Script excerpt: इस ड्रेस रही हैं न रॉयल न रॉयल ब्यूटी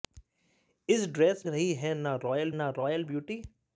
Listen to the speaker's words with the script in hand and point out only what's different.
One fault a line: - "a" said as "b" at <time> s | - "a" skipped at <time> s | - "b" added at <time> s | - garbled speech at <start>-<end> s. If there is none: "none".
none